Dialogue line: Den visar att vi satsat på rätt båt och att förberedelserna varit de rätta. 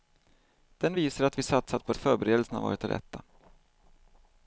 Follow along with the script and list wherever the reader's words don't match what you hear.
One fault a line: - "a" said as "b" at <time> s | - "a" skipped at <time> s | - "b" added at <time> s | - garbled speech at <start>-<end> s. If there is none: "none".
- "rätt båt och" skipped at 1.9 s